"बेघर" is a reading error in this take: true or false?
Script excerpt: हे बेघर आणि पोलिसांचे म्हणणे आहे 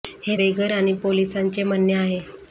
false